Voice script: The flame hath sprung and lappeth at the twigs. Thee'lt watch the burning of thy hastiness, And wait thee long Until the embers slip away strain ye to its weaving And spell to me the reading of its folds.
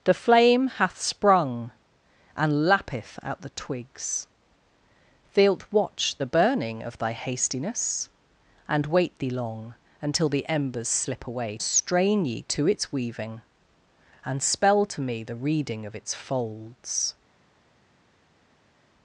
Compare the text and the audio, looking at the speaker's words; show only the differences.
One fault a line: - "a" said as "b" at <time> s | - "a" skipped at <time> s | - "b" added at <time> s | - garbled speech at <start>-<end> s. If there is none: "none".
none